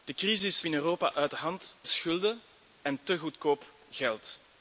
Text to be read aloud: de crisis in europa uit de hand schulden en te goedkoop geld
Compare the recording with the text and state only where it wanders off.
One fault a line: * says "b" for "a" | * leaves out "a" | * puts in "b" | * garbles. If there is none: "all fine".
all fine